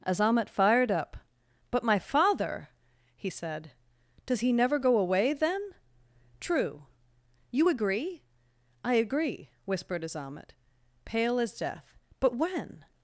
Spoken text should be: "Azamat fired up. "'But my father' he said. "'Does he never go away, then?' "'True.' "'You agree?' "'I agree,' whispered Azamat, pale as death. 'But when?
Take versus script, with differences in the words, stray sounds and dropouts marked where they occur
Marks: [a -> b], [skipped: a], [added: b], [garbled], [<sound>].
"Azamat fired up. "'But my father' he said. "'Does he never go away, then?' "'True.' "'You agree?' "'I agree,' whispered Azamat, pale as death. 'But when?